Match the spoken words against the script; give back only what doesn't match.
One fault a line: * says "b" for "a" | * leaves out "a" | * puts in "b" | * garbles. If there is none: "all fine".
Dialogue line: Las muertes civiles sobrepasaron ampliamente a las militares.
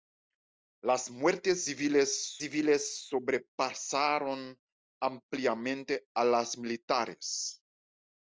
* puts in "civiles"